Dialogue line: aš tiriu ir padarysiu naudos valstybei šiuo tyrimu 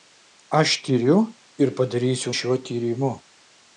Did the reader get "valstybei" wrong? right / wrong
wrong